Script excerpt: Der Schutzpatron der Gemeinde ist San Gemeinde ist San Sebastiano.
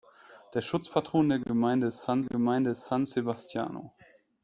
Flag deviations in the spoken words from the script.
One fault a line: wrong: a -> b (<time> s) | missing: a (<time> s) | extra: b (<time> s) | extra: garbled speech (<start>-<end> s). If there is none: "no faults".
no faults